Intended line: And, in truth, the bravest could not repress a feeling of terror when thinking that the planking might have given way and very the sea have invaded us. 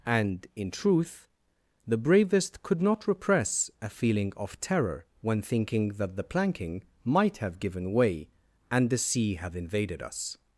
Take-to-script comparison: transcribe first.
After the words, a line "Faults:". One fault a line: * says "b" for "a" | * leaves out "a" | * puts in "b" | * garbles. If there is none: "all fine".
And, in truth, the bravest could not repress a feeling of terror when thinking that the planking might have given way and the sea have invaded us.
Faults:
* leaves out "very"